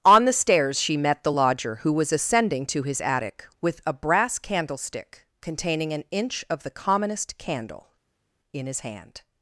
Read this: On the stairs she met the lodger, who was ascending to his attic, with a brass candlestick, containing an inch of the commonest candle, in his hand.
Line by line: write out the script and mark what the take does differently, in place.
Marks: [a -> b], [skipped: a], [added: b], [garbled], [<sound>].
On the stairs she met the lodger, who was ascending to his attic, with a brass candlestick, containing an inch of the commonest candle, in his hand.